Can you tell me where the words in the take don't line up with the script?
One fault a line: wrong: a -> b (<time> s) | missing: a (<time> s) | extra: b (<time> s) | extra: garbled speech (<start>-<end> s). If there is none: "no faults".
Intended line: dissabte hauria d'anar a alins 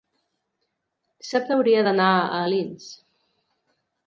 no faults